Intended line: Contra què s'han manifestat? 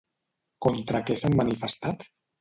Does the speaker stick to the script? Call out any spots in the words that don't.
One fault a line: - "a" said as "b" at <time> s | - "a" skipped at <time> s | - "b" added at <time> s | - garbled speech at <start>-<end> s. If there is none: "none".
none